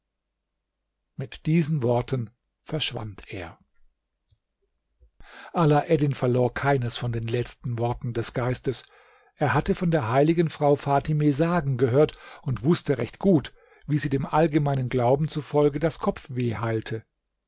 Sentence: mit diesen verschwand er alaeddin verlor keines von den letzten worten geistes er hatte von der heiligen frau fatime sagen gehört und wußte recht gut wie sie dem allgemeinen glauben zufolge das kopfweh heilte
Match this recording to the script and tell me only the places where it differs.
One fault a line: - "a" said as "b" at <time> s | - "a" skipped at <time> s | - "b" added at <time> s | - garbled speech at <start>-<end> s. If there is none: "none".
- "worten" added at 1.8 s
- "des" added at 8.1 s